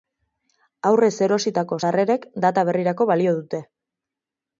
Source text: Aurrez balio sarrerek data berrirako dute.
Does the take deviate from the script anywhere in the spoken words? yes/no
yes